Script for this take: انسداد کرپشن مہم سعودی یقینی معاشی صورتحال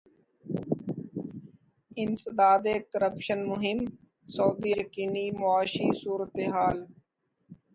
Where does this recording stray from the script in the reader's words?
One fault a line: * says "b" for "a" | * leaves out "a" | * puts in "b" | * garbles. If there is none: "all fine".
all fine